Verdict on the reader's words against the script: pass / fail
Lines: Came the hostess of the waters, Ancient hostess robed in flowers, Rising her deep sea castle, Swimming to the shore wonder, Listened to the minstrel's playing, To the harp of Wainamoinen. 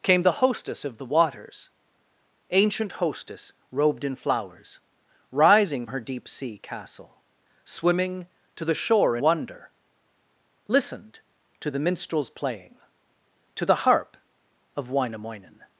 pass